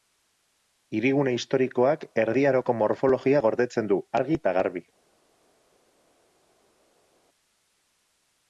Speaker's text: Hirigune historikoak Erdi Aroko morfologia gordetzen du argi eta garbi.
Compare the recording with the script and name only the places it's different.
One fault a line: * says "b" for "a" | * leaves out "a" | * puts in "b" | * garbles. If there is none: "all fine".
all fine